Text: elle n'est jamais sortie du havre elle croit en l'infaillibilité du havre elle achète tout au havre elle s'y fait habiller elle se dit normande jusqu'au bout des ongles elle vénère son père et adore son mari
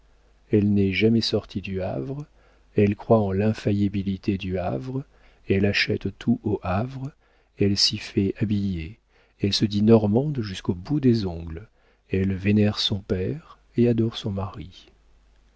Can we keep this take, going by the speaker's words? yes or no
yes